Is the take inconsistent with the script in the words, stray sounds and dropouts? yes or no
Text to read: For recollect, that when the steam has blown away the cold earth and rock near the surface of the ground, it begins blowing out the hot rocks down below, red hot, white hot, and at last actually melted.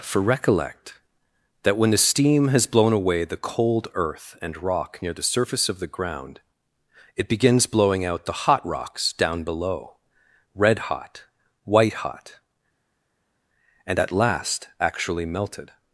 no